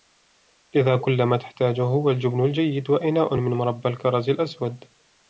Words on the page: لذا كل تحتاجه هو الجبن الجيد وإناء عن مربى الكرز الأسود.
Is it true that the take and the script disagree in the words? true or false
true